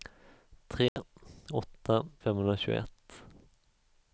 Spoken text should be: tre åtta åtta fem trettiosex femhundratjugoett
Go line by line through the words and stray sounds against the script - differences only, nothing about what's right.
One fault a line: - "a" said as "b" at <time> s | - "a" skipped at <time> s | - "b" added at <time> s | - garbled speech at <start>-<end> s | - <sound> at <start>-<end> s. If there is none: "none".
- dropout at 0.9-1.0 s
- "åtta fem trettiosex" skipped at 2.0 s